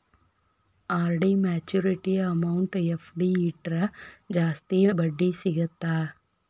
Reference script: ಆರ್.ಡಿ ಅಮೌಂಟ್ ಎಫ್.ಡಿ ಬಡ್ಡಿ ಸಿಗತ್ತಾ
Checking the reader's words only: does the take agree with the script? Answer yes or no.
no